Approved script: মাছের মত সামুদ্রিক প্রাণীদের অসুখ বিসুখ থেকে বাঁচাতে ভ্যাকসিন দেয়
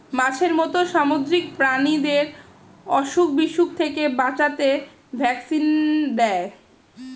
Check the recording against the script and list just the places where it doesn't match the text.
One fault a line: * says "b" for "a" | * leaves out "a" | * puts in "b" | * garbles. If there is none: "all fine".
all fine